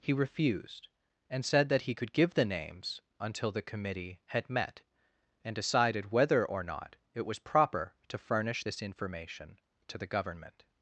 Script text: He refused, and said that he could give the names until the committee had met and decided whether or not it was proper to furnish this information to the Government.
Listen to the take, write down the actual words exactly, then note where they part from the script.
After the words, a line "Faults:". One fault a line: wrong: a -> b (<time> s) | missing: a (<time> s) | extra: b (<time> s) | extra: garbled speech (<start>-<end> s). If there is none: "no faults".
He refused, and said that he could give the names until the committee had met and decided whether or not it was proper to furnish this information to the Government.
Faults:
no faults